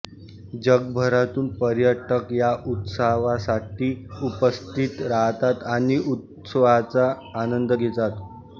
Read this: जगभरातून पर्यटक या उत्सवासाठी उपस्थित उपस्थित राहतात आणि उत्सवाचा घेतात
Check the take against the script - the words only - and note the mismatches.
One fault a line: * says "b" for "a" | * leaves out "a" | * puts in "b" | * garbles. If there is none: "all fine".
* leaves out "उपस्थित"
* puts in "आनंद"